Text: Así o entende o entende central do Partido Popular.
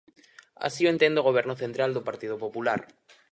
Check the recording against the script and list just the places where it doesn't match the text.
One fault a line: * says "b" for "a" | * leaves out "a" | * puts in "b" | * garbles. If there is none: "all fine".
* says "goberno" for "entende"